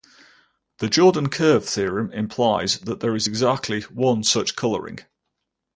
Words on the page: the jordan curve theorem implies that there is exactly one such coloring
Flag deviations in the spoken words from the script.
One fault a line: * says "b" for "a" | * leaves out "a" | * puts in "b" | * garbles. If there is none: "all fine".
all fine